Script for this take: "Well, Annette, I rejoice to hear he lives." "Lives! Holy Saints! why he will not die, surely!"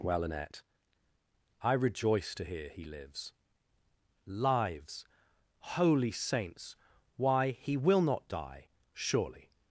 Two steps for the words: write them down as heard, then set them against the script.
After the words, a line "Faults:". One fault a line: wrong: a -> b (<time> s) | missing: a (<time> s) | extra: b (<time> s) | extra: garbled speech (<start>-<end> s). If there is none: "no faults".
"Well, Annette, I rejoice to hear he lives." "Lives! Holy Saints! why he will not die, surely!"
Faults:
no faults